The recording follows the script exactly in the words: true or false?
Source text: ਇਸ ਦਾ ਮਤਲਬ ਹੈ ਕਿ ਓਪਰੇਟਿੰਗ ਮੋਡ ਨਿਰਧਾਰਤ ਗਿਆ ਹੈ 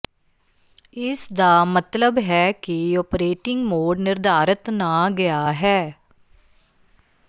false